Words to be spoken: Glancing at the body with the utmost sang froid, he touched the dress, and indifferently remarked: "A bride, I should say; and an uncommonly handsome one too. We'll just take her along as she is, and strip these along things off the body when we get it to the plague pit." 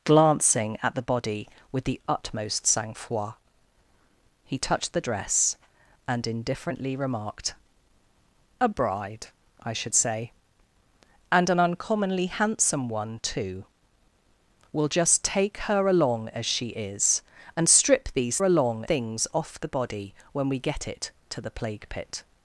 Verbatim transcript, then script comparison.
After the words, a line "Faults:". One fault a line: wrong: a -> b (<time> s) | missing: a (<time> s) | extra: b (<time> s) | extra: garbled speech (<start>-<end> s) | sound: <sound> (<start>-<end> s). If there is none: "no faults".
Glancing at the body with the utmost sang froid, he touched the dress, and indifferently remarked: "A bride, I should say; and an uncommonly handsome one too. We'll just take her along as she is, and strip these along things off the body when we get it to the plague pit."
Faults:
no faults